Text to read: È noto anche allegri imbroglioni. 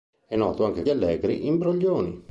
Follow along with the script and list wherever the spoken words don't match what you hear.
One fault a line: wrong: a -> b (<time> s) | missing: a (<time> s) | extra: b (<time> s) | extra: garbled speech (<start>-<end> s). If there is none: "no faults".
no faults